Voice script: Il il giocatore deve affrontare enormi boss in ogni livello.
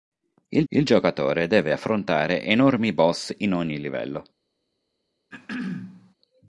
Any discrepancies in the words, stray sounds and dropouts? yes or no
yes